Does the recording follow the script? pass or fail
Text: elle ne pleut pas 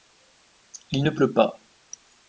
fail